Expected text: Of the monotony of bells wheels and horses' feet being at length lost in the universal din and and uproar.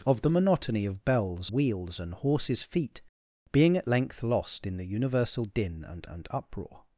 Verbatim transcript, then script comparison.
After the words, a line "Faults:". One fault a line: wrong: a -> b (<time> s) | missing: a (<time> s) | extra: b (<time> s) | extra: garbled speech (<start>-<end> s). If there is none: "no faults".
Of the monotony of bells wheels and horses' feet being at length lost in the universal din and and uproar.
Faults:
no faults